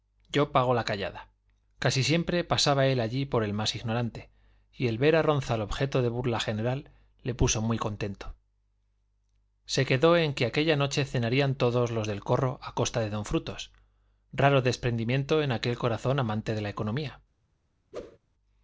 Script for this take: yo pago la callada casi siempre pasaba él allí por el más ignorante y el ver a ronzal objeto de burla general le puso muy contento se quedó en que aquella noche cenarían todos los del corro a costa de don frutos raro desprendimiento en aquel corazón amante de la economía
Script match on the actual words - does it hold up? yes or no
yes